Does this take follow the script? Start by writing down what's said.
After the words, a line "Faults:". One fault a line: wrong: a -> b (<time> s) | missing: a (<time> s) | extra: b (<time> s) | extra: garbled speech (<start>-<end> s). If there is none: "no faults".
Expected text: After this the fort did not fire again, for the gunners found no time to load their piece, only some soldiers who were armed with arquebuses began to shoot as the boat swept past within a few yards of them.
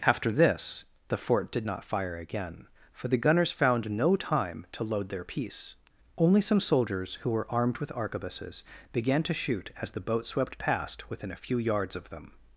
After this the fort did not fire again, for the gunners found no time to load their piece, only some soldiers who were armed with arquebuses began to shoot as the boat swept past within a few yards of them.
Faults:
no faults